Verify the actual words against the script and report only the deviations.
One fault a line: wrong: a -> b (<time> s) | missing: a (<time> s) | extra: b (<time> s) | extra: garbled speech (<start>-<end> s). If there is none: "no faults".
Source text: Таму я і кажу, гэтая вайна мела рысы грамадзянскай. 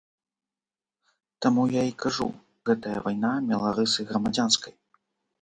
no faults